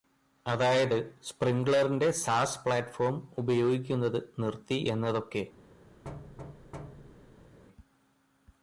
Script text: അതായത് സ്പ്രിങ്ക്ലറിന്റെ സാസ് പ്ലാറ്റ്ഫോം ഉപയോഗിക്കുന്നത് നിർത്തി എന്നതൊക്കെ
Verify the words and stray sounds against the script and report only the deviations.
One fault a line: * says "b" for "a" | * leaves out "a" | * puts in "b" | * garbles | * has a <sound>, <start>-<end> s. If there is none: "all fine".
* has a thud, 6.0-7.6 s